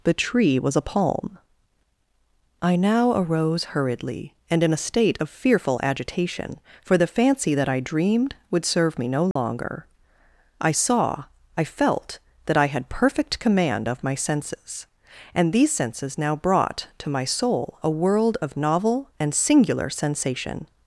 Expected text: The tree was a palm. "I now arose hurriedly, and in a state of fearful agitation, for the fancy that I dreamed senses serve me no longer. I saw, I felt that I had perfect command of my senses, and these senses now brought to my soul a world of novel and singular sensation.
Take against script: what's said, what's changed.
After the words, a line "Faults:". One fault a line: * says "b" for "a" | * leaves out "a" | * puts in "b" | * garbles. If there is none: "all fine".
The tree was a palm. "I now arose hurriedly, and in a state of fearful agitation, for the fancy that I dreamed would serve me no longer. I saw, I felt that I had perfect command of my senses, and these senses now brought to my soul a world of novel and singular sensation.
Faults:
* says "would" for "senses"